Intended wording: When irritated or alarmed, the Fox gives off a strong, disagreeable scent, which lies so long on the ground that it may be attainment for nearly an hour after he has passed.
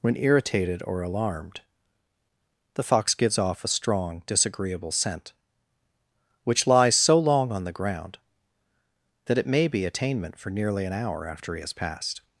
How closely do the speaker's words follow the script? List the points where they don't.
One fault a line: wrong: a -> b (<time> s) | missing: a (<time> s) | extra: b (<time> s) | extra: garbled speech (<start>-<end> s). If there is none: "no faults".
no faults